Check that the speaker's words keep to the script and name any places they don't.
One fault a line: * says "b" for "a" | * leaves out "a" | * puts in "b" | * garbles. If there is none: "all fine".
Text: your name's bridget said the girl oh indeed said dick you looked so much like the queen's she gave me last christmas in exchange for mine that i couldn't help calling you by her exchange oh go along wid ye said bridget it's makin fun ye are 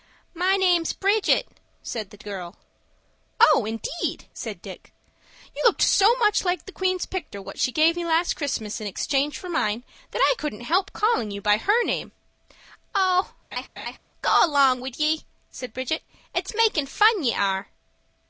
* says "my" for "your"
* puts in "picter what"
* says "name" for "exchange"